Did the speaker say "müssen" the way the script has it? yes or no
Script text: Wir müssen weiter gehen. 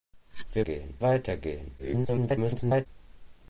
no